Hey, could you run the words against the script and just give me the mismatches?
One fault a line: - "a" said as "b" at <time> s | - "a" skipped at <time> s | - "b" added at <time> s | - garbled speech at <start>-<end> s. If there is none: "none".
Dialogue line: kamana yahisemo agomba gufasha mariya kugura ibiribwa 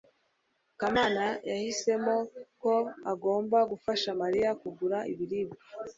- "ko" added at 2.6 s